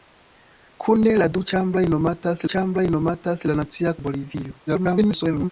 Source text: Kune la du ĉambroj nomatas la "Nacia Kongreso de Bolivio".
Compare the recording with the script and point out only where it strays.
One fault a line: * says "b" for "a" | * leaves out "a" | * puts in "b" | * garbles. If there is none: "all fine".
* puts in "ĉambroj nomatas"
* leaves out "Kongreso"
* garbles